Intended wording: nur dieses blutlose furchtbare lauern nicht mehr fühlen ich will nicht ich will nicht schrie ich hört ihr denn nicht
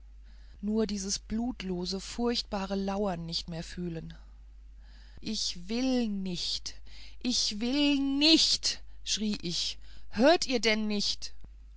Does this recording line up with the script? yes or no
yes